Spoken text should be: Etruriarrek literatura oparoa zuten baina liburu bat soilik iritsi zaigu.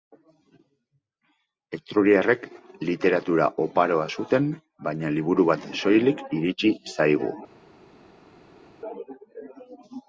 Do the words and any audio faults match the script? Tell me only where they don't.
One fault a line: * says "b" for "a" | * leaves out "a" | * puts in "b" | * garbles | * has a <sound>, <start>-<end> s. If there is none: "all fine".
all fine